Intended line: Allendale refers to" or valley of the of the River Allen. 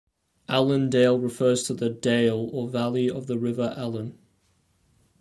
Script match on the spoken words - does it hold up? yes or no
no